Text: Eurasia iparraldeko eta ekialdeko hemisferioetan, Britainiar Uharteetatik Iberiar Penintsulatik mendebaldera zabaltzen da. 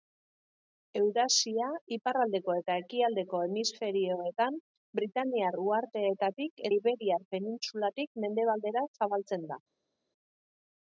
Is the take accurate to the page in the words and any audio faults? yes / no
yes